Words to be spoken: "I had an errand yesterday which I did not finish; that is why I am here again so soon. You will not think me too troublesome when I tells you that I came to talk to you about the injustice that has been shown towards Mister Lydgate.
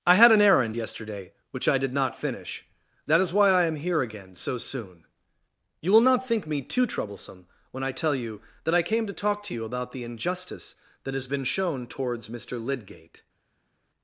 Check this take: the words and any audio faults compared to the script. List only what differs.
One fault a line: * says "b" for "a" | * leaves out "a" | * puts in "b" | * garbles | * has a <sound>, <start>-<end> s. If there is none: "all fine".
* says "tell" for "tells"